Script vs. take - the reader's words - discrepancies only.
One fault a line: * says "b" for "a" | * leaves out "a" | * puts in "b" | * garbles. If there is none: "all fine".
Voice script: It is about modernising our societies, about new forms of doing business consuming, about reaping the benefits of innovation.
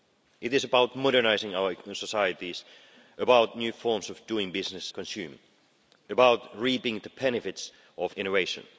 all fine